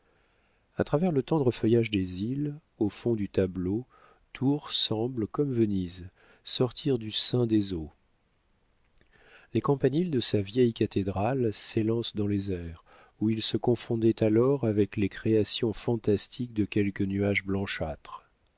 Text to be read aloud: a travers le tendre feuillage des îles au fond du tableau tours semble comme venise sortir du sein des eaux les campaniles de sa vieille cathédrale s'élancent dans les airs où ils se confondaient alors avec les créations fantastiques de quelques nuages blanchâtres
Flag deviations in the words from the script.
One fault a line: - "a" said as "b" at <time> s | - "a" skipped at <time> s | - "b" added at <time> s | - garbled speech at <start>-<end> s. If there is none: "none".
none